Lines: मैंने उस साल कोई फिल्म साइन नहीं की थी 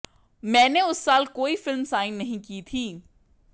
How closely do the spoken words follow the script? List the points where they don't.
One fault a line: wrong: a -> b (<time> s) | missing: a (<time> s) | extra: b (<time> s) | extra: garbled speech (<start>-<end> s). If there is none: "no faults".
no faults